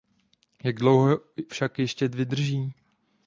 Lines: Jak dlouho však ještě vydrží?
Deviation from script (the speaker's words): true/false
false